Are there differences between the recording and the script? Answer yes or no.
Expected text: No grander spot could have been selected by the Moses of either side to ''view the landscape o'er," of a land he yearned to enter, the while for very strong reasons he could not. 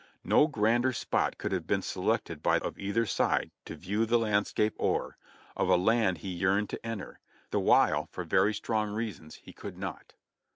yes